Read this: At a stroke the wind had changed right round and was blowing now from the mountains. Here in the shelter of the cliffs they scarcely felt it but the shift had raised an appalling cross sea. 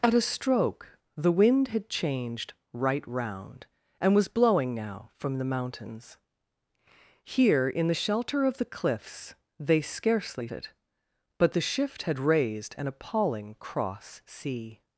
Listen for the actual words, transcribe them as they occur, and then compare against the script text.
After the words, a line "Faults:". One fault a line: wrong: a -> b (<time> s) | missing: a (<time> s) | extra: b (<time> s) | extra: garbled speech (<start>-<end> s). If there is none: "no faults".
At a stroke the wind had changed right round and was blowing now from the mountains. Here in the shelter of the cliffs they scarcely it but the shift had raised an appalling cross sea.
Faults:
missing: felt (10.5 s)